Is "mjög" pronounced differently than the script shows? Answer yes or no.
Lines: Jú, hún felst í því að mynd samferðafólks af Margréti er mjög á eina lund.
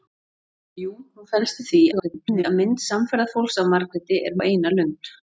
yes